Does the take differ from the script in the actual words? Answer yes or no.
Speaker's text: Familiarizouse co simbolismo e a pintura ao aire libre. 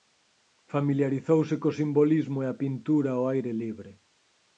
no